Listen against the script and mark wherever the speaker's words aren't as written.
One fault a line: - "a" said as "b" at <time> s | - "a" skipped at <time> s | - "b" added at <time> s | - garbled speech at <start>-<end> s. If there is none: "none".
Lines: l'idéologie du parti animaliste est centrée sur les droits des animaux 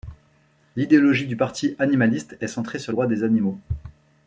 - "les" skipped at 2.9 s